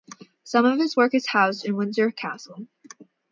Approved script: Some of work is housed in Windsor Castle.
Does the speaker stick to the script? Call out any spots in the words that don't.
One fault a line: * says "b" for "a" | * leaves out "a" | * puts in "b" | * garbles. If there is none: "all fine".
* puts in "his"